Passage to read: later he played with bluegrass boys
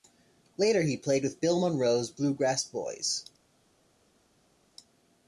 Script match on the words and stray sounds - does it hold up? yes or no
no